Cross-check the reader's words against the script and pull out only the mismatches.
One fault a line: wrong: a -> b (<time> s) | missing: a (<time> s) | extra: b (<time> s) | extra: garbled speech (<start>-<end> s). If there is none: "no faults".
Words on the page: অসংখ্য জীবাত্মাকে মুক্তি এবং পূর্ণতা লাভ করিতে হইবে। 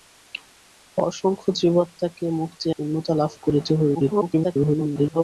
missing: এবং (2.7 s)
extra: garbled speech (3.9-5.2 s)